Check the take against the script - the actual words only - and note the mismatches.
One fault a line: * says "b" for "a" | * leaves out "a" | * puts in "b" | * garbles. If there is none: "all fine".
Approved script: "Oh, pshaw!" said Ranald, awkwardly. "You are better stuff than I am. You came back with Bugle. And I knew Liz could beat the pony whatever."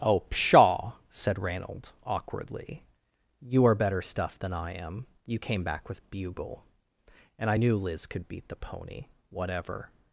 all fine